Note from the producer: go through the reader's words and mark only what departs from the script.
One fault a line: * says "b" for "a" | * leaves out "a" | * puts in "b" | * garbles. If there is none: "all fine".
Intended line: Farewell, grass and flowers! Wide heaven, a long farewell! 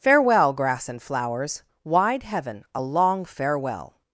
all fine